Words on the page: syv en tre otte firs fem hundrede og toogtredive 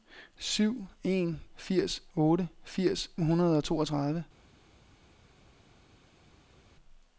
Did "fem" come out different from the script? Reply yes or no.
yes